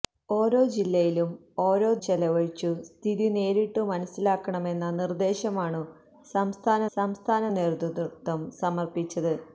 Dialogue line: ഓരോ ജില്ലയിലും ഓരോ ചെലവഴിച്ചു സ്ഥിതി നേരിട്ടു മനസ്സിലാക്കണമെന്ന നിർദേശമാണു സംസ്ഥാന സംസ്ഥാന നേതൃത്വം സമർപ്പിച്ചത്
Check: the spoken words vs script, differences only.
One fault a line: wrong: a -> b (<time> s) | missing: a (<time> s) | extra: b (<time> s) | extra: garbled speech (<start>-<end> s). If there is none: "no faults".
no faults